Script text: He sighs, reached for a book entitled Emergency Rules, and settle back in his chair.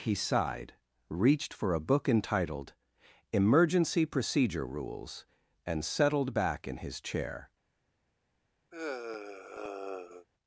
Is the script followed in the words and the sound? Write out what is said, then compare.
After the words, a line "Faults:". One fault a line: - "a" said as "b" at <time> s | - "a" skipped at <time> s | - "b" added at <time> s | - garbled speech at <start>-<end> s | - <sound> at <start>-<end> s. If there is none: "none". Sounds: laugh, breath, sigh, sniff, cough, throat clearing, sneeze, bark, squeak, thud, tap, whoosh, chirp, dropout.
He sighed, reached for a book entitled Emergency Procedure Rules, and settled back in his chair.
Faults:
- "sighs" said as "sighed" at 0.1 s
- "Procedure" added at 4.1 s
- "settle" said as "settled" at 5.8 s
- sigh at 8.7-10.3 s